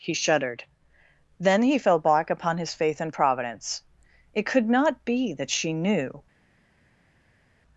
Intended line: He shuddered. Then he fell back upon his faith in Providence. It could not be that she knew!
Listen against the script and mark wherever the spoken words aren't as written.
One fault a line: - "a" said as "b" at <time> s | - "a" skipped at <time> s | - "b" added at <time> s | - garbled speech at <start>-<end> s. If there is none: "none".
none